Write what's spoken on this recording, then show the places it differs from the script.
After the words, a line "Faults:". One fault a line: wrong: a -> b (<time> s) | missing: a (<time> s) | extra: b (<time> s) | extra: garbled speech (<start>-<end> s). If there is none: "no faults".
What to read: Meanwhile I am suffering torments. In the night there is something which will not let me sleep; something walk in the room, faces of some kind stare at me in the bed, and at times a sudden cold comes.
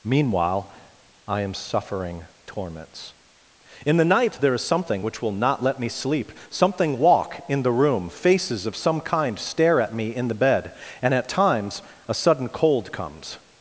Meanwhile I am suffering torments. In the night there is something which will not let me sleep; something walk in the room, faces of some kind stare at me in the bed, and at times a sudden cold comes.
Faults:
no faults